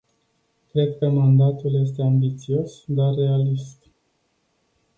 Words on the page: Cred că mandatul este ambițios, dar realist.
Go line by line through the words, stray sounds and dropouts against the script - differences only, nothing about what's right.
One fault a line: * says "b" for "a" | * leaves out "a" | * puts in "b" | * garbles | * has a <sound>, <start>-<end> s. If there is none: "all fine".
all fine